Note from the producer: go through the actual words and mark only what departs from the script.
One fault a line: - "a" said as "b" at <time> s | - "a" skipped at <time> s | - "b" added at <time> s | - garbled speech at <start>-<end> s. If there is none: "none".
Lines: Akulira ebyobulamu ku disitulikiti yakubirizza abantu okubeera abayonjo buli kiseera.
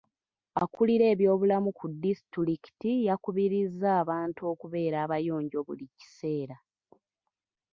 none